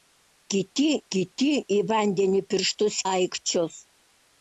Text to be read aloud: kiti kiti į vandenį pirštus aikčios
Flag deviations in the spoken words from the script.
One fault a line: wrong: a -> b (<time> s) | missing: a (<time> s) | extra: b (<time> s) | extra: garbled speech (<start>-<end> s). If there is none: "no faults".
no faults